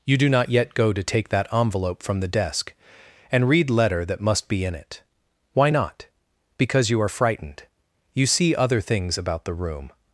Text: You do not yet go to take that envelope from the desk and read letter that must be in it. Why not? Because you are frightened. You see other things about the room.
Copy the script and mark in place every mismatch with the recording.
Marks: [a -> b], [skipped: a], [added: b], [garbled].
You do not yet go to take that envelope from the desk and read letter that must be in it. Why not? Because you are frightened. You see other things about the room.